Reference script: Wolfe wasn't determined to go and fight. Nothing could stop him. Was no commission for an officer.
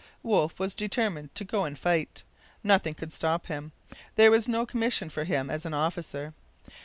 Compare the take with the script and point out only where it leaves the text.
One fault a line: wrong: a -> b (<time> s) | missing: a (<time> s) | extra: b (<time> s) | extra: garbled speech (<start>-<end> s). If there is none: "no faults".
wrong: wasn't -> was (0.6 s)
extra: There (4.2 s)
extra: him as (5.2 s)